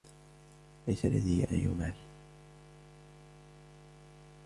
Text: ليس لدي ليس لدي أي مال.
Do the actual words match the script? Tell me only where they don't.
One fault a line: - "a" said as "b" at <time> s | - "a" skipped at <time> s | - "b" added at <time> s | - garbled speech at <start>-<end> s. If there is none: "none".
- "ليس لدي" skipped at 1.5 s